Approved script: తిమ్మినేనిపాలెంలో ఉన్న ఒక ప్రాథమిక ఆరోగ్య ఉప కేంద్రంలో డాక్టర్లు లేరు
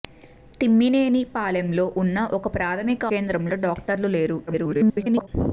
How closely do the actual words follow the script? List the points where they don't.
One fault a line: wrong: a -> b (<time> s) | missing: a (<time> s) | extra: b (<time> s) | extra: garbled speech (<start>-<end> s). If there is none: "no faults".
missing: ఆరోగ్య ఉప (3.0 s)
extra: garbled speech (4.5-5.3 s)